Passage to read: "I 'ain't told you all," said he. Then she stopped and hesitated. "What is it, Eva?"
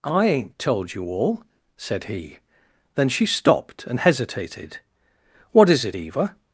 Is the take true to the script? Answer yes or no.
yes